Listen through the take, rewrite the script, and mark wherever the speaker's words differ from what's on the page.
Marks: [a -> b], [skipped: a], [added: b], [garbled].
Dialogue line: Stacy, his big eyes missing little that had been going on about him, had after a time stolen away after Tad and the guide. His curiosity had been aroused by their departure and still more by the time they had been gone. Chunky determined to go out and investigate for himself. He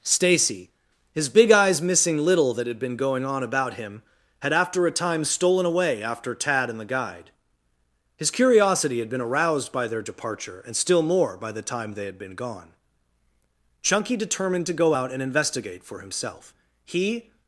Stacy, his big eyes missing little that had been going on about him, had after a time stolen away after Tad and the guide. His curiosity had been aroused by their departure and still more by the time they had been gone. Chunky determined to go out and investigate for himself. He